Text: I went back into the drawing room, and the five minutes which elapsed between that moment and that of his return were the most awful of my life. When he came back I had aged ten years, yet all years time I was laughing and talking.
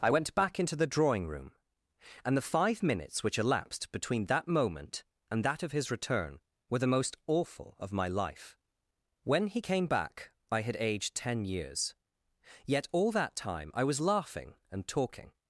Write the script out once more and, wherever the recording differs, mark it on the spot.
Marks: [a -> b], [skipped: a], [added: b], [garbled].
I went back into the drawing room, and the five minutes which elapsed between that moment and that of his return were the most awful of my life. When he came back I had aged ten years, yet all [years -> that] time I was laughing and talking.